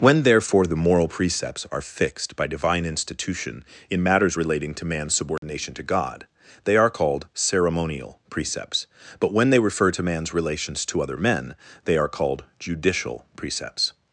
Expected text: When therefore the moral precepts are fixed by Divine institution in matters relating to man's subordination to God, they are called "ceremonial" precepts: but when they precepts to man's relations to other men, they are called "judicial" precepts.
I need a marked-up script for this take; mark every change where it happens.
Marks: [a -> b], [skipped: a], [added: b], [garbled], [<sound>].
When therefore the moral precepts are fixed by Divine institution in matters relating to man's subordination [dropout] to God, they are called "ceremonial" precepts: but when they [precepts -> refer] to man's relations to other men, they are called "judicial" precepts.